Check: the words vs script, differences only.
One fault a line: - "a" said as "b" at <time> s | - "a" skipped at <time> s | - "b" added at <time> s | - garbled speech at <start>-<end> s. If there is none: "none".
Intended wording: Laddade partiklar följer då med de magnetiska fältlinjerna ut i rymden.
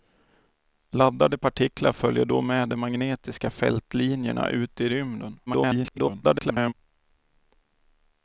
- garbled speech at 5.5-6.7 s